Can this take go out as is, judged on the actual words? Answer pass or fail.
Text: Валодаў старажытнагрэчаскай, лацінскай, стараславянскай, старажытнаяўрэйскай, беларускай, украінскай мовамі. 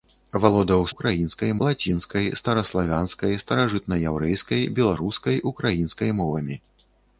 fail